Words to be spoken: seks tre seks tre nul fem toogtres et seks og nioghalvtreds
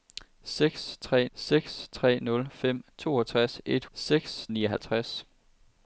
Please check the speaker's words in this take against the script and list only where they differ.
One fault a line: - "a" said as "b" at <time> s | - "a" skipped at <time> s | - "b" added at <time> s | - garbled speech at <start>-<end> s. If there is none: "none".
none